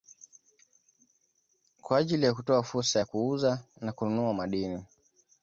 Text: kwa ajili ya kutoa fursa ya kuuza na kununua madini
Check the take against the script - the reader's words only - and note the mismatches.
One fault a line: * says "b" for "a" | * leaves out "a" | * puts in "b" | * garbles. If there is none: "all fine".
all fine